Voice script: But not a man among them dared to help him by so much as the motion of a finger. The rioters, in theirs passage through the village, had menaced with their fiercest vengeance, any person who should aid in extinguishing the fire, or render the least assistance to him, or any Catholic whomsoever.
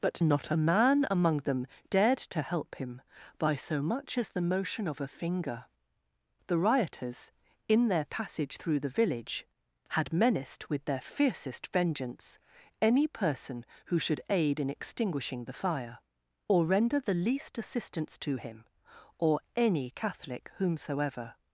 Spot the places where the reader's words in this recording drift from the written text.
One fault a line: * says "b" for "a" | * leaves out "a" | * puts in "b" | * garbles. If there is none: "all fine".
* says "their" for "theirs"